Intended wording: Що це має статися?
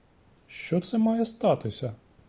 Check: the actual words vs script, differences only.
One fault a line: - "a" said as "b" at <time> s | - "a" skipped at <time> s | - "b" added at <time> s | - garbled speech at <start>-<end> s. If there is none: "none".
none